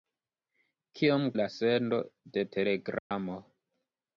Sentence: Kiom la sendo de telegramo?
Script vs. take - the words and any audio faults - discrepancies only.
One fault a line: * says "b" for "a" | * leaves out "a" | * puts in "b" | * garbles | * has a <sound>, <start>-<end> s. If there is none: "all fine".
* has a dropout, 3.0-3.1 s